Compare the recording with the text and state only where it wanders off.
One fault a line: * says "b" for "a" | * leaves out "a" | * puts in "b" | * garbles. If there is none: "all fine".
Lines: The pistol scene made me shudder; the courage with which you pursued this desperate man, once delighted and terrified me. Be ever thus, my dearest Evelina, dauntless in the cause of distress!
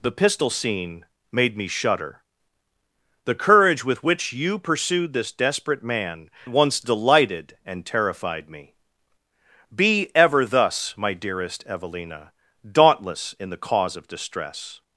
all fine